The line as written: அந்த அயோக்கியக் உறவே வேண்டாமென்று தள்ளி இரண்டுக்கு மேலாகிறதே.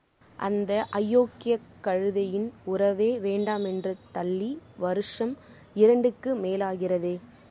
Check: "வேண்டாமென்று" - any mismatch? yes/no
no